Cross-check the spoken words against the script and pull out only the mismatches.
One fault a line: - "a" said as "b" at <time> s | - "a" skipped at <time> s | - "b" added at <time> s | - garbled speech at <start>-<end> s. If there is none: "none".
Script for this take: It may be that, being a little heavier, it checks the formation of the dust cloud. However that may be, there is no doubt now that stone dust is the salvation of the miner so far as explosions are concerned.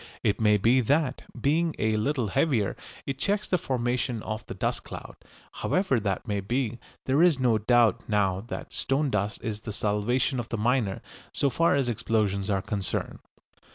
none